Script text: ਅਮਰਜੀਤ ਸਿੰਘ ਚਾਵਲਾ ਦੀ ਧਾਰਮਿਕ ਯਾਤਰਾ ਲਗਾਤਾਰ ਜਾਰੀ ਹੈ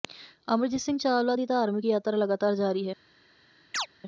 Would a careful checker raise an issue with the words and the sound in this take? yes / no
yes